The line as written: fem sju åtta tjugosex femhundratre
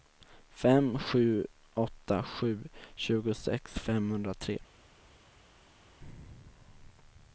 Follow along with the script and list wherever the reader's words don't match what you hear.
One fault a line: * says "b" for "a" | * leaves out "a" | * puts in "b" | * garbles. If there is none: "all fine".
* puts in "sju"